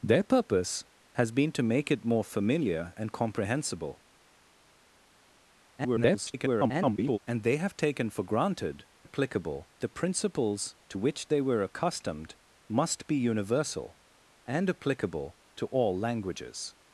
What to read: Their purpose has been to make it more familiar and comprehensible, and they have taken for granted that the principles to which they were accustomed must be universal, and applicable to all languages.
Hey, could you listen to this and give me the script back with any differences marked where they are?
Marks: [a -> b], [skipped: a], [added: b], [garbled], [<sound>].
Their purpose has been to make it more familiar and comprehensible, [garbled] and they have taken for granted [that -> applicable] the principles to which they were accustomed must be universal, and applicable to all languages.